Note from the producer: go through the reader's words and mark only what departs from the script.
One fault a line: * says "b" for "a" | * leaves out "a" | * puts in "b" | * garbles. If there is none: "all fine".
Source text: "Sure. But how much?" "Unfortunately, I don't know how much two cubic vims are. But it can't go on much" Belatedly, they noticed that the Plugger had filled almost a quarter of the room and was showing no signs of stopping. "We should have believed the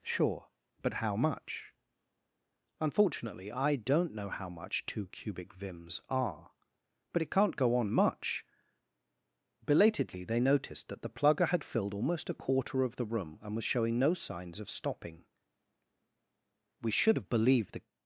all fine